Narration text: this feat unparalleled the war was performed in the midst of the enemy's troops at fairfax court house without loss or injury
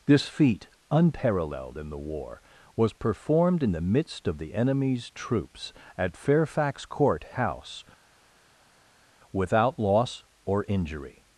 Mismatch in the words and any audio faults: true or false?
true